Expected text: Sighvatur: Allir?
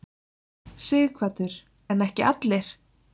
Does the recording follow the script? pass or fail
fail